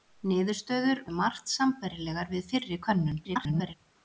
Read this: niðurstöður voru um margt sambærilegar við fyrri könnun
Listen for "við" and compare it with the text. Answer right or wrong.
right